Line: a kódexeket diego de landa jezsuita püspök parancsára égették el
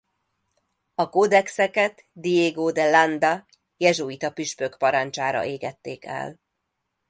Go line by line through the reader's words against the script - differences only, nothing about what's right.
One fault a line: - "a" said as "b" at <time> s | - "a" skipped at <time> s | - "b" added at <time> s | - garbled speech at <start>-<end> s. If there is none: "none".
none